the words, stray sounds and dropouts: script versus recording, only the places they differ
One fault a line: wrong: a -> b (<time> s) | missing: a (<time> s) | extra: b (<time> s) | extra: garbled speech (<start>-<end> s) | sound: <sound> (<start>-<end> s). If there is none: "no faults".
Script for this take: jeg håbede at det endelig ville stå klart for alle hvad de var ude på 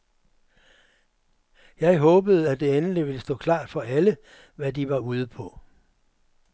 no faults